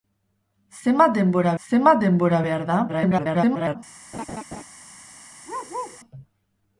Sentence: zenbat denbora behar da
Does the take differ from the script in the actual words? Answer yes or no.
yes